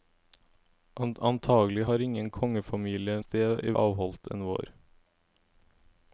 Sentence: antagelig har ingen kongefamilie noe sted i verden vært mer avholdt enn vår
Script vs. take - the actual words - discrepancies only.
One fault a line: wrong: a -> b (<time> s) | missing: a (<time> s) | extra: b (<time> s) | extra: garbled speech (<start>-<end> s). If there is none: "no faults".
missing: noe (3.2 s)
missing: verden vært mer (3.7 s)